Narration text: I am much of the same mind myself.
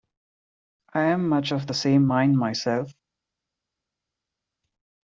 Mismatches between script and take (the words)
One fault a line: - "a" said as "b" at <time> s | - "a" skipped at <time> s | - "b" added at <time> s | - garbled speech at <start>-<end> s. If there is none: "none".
none